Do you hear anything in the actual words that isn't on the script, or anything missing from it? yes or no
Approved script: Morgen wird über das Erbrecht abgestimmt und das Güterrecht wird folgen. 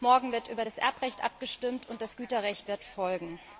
no